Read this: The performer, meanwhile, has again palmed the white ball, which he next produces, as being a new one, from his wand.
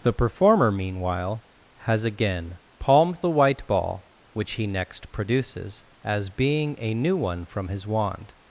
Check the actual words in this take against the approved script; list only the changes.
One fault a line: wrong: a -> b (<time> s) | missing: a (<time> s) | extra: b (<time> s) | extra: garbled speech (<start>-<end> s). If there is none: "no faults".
no faults